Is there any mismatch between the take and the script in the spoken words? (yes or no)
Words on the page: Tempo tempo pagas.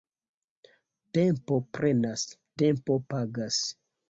yes